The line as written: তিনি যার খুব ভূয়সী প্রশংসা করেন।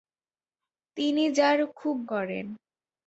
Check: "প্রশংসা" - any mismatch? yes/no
yes